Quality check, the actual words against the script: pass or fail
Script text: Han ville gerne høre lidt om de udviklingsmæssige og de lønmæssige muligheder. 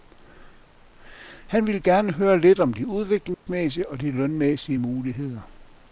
pass